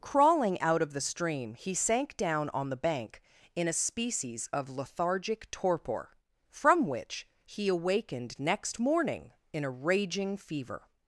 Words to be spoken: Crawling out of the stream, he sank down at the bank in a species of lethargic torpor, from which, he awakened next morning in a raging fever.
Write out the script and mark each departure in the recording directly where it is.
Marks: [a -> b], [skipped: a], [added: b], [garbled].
Crawling out of the stream, he sank down [at -> on] the bank in a species of lethargic torpor, from which, he awakened next morning in a raging fever.